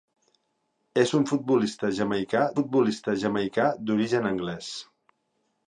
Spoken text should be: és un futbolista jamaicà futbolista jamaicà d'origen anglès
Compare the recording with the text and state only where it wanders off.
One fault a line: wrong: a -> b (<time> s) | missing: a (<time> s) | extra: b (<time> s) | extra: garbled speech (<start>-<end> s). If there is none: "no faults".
no faults